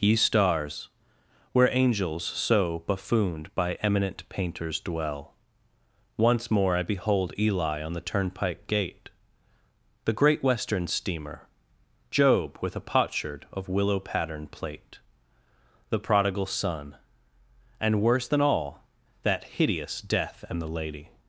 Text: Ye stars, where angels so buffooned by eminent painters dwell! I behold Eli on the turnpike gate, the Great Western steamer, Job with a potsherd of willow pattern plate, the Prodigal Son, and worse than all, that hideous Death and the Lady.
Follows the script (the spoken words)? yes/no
no